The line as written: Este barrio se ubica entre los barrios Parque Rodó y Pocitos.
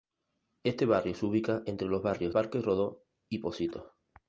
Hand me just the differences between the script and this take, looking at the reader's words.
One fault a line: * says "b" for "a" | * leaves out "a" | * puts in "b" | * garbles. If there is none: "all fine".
all fine